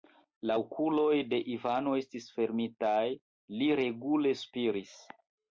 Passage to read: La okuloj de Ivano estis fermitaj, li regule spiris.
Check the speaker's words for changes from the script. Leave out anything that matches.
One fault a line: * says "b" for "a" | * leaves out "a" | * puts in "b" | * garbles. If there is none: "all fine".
all fine